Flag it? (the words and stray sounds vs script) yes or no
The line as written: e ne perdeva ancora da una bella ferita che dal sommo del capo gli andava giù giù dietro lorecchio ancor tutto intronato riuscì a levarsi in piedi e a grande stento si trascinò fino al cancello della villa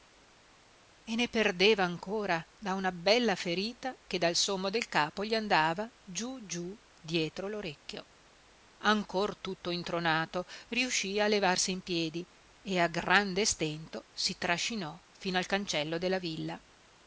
no